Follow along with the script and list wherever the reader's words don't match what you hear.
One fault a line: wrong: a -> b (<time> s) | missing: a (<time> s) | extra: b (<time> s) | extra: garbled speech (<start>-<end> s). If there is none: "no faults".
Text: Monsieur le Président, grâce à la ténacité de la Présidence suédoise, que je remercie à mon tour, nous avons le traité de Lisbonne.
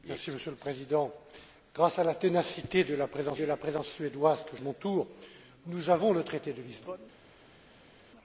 extra: de la Présidence (3.3 s)
missing: je remercie (4.6 s)